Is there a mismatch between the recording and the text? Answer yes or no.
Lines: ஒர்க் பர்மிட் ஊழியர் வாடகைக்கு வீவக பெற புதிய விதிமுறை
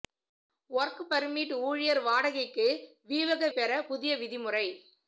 no